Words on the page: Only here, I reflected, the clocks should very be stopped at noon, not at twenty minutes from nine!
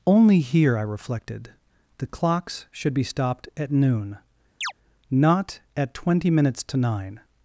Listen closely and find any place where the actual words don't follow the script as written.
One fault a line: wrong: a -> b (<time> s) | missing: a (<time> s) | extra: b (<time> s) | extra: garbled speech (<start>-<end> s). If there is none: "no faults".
missing: very (3.0 s)
wrong: from -> to (6.6 s)